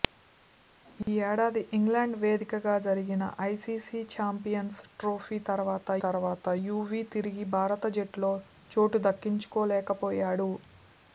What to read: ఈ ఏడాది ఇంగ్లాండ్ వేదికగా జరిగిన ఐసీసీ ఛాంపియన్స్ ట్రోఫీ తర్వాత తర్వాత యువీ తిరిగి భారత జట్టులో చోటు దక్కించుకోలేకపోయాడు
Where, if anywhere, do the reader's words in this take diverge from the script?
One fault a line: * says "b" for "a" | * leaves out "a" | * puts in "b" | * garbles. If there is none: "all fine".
all fine